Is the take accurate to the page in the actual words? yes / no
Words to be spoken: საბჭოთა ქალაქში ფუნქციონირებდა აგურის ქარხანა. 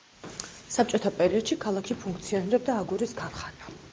no